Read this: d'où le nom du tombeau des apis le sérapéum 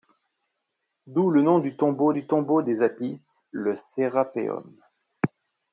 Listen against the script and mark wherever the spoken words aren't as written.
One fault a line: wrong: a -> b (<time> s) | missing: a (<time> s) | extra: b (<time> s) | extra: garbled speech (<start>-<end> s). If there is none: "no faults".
extra: du tombeau (2.1 s)